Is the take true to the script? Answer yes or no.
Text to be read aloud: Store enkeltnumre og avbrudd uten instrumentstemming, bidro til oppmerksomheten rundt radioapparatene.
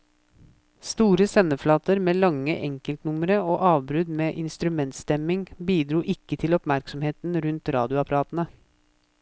no